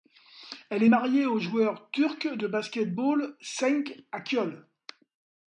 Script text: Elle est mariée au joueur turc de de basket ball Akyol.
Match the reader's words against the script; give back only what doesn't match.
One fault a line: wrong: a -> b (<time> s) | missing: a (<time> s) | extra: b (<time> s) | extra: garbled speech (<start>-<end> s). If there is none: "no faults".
missing: de (2.5 s)
extra: Cenk (3.4 s)